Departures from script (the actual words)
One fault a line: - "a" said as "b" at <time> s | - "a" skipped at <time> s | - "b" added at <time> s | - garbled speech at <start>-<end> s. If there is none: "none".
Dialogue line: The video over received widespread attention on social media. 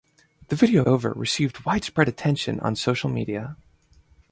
none